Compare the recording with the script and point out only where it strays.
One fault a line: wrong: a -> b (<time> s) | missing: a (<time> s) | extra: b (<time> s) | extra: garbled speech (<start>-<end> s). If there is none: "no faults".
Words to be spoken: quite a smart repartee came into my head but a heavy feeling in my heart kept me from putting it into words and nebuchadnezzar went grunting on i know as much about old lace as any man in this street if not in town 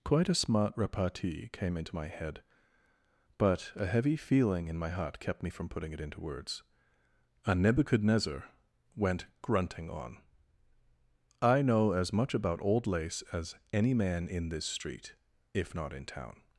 no faults